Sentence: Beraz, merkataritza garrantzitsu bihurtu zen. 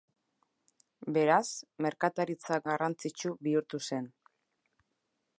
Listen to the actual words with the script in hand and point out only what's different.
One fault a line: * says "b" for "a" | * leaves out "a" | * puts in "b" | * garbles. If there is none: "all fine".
all fine